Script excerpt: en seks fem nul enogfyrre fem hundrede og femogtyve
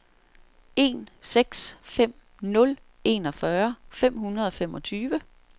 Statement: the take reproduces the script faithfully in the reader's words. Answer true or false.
true